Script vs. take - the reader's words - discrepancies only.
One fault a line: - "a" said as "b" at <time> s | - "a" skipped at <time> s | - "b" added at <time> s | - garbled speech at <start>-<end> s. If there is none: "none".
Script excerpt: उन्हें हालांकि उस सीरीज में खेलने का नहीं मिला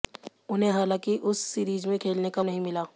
none